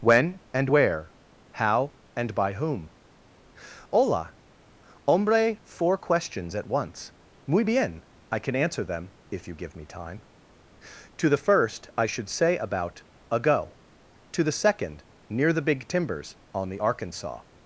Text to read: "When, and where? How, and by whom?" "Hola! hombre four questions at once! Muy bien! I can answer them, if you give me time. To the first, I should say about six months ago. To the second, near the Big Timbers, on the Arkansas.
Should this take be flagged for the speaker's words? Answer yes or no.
yes